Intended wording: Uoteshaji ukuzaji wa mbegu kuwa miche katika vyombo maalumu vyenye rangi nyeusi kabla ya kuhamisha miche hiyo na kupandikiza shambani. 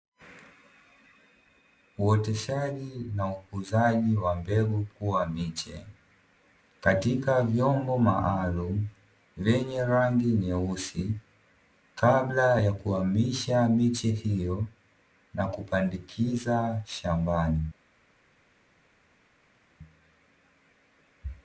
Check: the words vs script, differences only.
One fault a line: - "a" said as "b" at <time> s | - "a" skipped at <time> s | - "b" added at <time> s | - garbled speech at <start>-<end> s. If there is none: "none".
- "na" added at 3.1 s